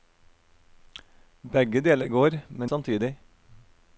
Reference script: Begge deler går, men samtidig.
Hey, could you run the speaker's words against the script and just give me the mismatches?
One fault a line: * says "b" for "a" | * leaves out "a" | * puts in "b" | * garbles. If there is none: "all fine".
all fine